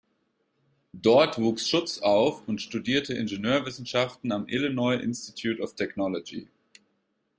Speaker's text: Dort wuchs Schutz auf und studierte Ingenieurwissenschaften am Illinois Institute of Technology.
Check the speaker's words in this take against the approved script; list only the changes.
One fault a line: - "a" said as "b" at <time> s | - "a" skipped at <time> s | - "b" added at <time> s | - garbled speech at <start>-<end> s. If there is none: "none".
none